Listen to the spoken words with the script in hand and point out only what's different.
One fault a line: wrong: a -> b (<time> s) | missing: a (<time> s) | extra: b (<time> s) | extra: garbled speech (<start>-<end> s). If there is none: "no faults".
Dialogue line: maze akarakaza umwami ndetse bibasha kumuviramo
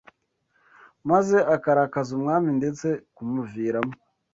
missing: bibasha (2.9 s)